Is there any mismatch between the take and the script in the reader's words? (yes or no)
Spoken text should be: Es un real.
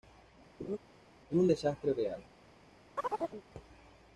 yes